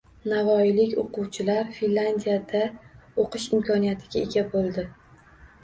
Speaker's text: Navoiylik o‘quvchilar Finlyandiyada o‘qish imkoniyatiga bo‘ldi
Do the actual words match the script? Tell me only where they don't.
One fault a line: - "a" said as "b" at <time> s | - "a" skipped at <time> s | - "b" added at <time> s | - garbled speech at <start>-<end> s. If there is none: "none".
- "ega" added at 4.3 s